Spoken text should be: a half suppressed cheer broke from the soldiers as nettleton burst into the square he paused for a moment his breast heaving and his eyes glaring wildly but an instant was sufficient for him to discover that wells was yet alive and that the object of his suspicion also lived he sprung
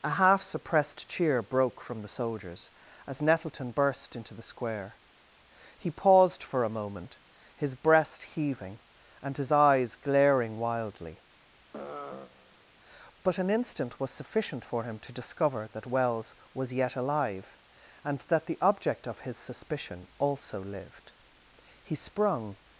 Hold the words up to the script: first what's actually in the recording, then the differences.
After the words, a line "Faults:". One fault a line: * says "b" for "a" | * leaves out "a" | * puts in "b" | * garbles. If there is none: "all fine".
a half suppressed cheer broke from the soldiers as nettleton burst into the square he paused for a moment his breast heaving and his eyes glaring wildly but an instant was sufficient for him to discover that wells was yet alive and that the object of his suspicion also lived he sprung
Faults:
all fine